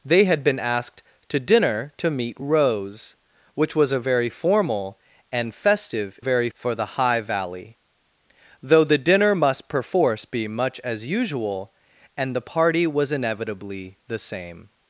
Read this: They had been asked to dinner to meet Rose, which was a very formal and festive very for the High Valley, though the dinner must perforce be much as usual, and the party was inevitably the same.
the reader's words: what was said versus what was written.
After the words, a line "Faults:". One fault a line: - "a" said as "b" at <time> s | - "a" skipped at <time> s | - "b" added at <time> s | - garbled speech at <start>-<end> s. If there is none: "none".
They had been asked to dinner to meet Rose, which was a very formal and festive very for the High Valley, though the dinner must perforce be much as usual, and the party was inevitably the same.
Faults:
none